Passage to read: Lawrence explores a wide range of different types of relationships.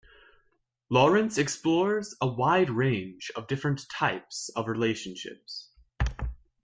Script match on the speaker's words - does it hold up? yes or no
yes